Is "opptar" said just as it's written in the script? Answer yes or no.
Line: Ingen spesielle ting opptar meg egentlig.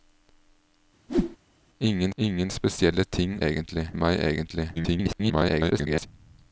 no